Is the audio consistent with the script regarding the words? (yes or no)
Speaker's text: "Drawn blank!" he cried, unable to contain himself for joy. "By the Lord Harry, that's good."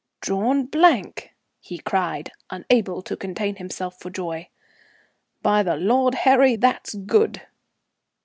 yes